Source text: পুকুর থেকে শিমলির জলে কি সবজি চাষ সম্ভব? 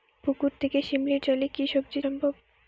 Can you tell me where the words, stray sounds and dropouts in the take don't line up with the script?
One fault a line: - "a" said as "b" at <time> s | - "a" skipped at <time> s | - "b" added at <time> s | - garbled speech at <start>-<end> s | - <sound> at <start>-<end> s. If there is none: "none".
- "চাষ" skipped at 2.0 s